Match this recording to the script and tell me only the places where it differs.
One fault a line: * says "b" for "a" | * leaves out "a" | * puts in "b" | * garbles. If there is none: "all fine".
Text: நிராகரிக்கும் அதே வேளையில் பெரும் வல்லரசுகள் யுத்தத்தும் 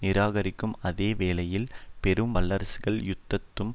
all fine